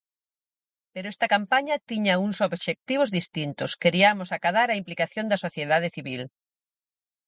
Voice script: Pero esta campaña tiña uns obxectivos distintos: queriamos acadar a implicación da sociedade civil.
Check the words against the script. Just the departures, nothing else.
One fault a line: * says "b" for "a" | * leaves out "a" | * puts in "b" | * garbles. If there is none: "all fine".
all fine